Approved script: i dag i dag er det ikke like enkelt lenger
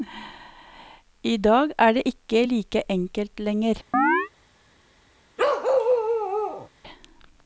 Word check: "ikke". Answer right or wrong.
right